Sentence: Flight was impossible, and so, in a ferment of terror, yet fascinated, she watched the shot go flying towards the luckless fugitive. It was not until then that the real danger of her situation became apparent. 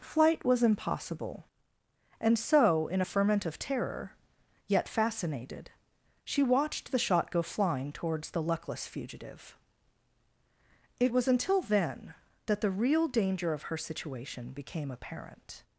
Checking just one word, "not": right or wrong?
wrong